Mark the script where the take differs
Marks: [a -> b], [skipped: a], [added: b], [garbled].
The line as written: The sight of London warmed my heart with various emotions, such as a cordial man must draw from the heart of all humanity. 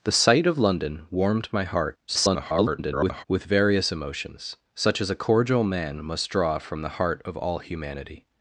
The sight of London warmed my heart [garbled] with various emotions, such as a cordial man must draw from the heart of all humanity.